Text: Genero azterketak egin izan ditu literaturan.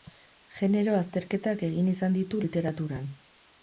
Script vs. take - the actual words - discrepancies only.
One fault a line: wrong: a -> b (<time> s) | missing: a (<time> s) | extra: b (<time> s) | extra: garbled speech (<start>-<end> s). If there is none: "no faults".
no faults